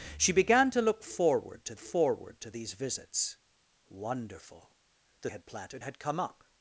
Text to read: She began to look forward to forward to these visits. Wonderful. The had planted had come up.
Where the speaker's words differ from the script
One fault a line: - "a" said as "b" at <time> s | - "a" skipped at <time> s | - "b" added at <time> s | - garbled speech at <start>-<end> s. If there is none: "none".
none